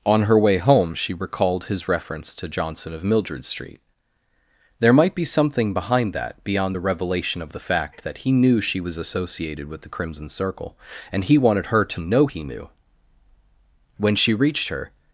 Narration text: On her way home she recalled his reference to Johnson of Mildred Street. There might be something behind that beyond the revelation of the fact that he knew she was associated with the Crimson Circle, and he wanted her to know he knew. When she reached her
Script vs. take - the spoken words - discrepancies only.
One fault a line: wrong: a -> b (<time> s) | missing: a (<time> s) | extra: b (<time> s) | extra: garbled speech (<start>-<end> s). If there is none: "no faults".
no faults